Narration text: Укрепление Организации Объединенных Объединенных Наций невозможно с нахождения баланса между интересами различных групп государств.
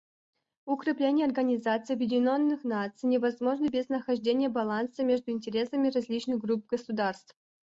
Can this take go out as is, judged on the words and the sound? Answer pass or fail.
fail